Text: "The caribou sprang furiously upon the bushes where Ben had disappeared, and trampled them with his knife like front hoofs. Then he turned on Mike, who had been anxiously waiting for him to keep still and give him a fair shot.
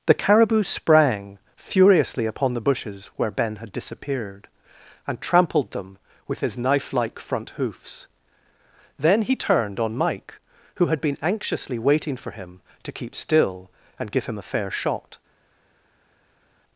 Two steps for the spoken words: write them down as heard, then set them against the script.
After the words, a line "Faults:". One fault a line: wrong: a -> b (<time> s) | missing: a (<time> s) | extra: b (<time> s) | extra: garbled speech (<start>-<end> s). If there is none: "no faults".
"The caribou sprang furiously upon the bushes where Ben had disappeared, and trampled them with his knife like front hoofs. Then he turned on Mike, who had been anxiously waiting for him to keep still and give him a fair shot.
Faults:
no faults